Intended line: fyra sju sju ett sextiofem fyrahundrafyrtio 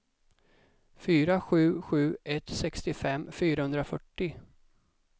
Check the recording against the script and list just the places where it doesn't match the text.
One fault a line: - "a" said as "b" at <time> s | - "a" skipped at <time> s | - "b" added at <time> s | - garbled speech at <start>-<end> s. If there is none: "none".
none